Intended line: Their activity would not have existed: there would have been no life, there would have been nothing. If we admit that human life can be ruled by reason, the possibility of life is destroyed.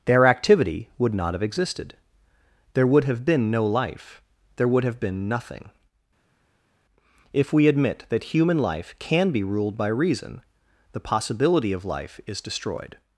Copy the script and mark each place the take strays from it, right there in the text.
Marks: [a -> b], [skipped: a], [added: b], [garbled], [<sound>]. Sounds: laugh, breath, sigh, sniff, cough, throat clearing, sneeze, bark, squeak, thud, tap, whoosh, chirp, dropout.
Their activity would not have existed: there would have been no life, there would have been nothing. If we admit that human life can be ruled by reason, the possibility of life is destroyed.